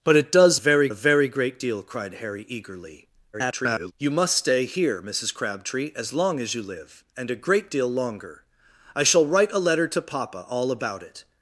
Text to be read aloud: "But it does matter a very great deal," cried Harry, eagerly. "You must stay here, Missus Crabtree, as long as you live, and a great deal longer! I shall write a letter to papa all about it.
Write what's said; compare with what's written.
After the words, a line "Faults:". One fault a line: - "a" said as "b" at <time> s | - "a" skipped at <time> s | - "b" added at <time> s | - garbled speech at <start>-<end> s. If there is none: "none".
"But it does very a very great deal," cried Harry, eagerly. [garbled] "You must stay here, Missus Crabtree, as long as you live, and a great deal longer! I shall write a letter to papa all about it.
Faults:
- "matter" said as "very" at 0.6 s
- garbled speech at 3.3-3.9 s